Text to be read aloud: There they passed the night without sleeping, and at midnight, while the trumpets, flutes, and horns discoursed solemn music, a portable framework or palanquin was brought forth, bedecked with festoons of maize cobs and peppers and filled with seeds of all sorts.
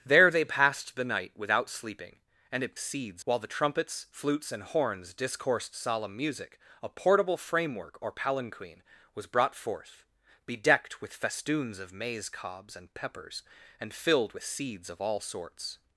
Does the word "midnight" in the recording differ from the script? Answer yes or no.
yes